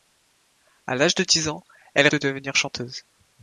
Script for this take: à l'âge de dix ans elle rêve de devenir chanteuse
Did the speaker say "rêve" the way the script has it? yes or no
no